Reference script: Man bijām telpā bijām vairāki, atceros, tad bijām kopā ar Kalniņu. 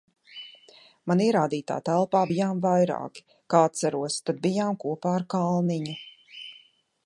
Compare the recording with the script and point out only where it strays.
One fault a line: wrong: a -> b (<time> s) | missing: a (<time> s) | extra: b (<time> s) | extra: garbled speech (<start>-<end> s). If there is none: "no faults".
wrong: bijām -> ierādītā (1.2 s)
extra: kā (3.5 s)